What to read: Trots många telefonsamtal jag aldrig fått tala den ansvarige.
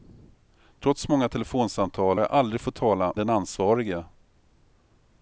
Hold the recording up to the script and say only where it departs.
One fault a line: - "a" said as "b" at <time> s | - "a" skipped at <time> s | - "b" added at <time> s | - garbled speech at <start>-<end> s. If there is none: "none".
none